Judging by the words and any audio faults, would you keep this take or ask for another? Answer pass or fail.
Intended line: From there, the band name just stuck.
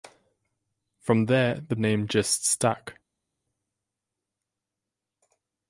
fail